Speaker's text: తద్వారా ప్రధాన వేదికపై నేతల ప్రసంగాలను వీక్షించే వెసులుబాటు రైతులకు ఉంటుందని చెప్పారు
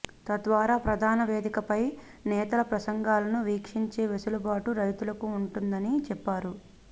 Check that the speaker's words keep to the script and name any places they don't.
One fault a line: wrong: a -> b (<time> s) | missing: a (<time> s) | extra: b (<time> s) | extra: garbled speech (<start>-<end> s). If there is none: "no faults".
no faults